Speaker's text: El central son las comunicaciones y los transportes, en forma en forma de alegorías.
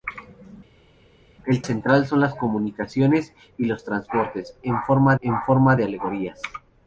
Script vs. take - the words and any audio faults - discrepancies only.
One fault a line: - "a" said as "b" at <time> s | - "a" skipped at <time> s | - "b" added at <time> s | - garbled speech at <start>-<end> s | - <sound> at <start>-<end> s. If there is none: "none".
none